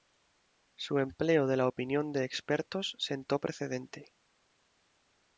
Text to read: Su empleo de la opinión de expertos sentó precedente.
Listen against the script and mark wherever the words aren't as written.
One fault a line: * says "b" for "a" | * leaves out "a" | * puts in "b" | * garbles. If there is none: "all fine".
all fine